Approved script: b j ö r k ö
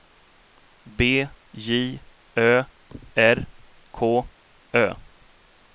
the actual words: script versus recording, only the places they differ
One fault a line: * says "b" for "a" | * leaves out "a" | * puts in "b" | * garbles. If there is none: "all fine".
all fine